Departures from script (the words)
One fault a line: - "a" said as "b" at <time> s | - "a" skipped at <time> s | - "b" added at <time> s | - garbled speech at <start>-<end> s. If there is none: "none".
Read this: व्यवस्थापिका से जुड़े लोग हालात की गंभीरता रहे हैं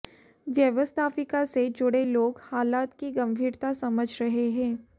- "समझ" added at 3.7 s